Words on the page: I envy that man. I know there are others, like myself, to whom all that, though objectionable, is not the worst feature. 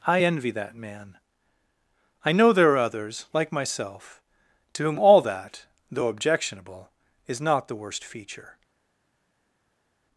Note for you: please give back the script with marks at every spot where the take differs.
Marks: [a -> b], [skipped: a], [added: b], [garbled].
I envy that man. I know there are others, like myself, to whom all that, though objectionable, is not the worst feature.